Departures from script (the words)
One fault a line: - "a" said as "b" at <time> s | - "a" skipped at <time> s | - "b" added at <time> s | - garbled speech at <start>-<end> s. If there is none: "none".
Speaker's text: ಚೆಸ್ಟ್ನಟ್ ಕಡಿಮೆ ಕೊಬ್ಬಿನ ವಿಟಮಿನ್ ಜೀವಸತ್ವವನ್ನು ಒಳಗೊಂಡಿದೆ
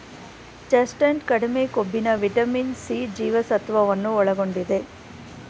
- "ಸಿ" added at 2.8 s